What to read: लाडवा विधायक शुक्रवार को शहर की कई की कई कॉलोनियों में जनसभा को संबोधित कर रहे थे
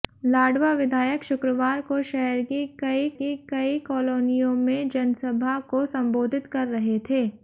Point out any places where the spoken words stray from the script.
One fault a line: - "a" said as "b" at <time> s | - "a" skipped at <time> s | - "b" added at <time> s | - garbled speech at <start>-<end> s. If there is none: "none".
none